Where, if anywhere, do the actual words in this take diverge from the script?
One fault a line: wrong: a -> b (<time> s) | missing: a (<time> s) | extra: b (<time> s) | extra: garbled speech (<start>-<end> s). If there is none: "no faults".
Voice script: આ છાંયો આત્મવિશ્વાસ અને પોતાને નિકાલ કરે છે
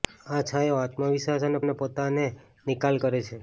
extra: અને (1.6 s)